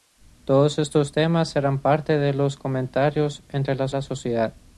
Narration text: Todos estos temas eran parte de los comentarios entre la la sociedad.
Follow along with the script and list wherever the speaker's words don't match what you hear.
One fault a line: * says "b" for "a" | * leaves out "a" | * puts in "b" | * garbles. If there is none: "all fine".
all fine